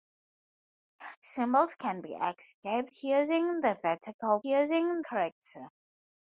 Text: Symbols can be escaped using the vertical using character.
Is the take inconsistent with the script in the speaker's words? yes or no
no